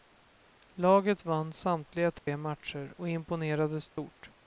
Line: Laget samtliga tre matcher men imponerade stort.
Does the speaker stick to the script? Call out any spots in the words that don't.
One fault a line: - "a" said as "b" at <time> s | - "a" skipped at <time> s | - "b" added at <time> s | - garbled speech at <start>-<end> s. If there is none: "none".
- "vann" added at 1.2 s
- "men" said as "och" at 2.9 s